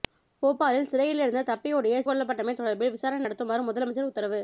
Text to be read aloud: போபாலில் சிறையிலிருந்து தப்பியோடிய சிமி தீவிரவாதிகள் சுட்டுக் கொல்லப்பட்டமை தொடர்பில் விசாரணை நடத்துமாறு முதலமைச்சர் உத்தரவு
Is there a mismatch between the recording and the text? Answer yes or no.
yes